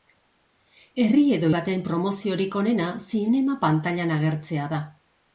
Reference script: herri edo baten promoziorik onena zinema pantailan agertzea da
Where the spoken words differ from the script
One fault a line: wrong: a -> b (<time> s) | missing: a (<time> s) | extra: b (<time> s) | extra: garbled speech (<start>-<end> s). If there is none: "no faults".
no faults